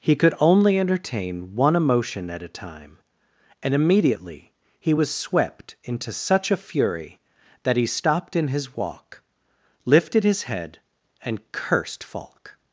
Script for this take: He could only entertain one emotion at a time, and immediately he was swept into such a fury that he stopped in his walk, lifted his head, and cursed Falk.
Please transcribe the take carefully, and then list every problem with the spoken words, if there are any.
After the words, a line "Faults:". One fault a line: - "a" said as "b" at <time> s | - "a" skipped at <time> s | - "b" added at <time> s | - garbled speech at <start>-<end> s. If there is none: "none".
He could only entertain one emotion at a time, and immediately he was swept into such a fury that he stopped in his walk, lifted his head, and cursed Falk.
Faults:
none